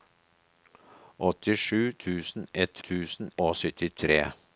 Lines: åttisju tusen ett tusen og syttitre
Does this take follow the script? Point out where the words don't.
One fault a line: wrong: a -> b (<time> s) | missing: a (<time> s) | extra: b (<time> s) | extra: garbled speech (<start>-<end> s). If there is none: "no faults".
no faults